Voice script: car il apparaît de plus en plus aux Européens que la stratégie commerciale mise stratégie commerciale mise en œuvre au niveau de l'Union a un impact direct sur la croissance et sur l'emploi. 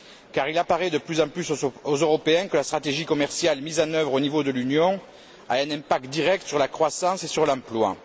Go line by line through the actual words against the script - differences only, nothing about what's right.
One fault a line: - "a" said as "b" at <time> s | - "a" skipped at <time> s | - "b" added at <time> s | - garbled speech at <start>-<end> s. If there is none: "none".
- "stratégie commerciale mise" skipped at 3.8 s